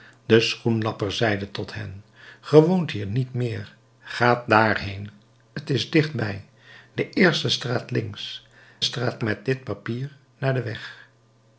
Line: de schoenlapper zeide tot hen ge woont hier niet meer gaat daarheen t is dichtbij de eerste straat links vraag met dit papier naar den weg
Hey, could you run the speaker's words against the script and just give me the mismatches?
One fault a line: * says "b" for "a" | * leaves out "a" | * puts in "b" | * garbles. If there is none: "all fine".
* says "straat" for "vraag"